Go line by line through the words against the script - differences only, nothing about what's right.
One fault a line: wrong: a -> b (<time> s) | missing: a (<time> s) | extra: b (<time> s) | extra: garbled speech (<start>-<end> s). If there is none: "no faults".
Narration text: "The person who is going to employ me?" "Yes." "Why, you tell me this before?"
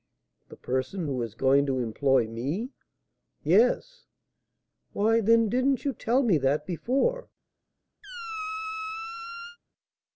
extra: then didn't (5.2 s)
wrong: this -> that (6.4 s)